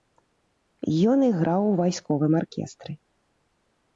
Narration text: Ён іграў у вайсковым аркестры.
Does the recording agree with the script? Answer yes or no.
yes